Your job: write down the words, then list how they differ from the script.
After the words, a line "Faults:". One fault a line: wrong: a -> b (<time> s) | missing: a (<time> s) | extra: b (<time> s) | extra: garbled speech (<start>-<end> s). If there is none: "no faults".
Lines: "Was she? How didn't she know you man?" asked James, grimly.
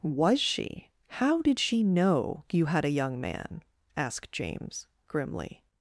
"Was she? How did she know you had a young man?" asked James, grimly.
Faults:
wrong: didn't -> did (1.4 s)
extra: had a young (2.6 s)